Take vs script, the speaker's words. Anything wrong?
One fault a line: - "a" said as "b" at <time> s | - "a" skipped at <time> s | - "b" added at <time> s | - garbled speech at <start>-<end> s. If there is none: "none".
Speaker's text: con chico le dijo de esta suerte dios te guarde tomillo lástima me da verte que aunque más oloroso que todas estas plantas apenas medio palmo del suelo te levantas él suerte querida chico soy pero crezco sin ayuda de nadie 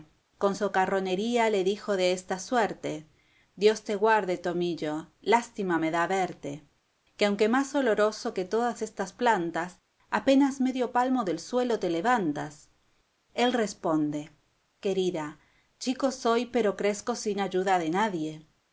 - "chico" said as "socarronería" at 0.5 s
- "suerte" said as "responde" at 13.5 s